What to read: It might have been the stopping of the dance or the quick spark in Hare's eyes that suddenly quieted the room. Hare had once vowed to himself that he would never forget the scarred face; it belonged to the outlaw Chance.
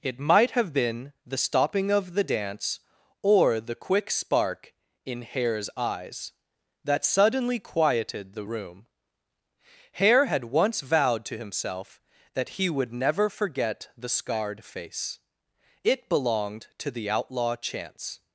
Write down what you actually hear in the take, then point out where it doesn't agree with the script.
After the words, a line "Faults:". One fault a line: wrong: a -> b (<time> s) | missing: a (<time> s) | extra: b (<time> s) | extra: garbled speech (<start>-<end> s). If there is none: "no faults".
It might have been the stopping of the dance or the quick spark in Hare's eyes that suddenly quieted the room. Hare had once vowed to himself that he would never forget the scarred face; it belonged to the outlaw Chance.
Faults:
no faults